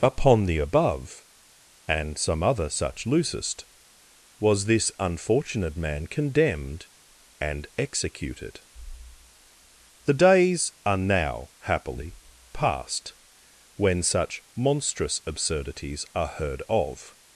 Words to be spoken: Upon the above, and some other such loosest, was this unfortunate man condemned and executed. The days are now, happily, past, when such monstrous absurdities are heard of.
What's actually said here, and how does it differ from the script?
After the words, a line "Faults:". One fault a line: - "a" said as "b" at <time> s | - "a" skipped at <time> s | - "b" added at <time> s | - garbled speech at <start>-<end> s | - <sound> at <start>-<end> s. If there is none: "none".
Upon the above, and some other such loosest, was this unfortunate man condemned and executed. The days are now, happily, past, when such monstrous absurdities are heard of.
Faults:
none